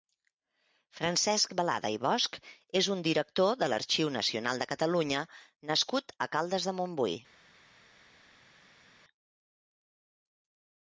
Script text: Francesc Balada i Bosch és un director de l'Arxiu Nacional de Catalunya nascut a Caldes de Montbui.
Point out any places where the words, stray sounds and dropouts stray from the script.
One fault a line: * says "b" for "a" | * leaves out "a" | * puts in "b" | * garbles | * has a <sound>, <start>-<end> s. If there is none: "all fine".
all fine